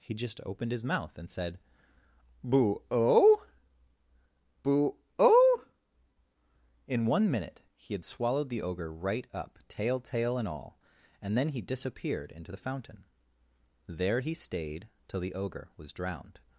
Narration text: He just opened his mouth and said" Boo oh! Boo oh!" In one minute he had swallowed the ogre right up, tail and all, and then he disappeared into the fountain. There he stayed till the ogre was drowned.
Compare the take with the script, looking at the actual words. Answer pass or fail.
fail